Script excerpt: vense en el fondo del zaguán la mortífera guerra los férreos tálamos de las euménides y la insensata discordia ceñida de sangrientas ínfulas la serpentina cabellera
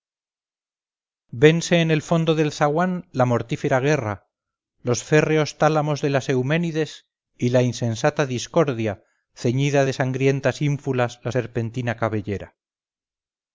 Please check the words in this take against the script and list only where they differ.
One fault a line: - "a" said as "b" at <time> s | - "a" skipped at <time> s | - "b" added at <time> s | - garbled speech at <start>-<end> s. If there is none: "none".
none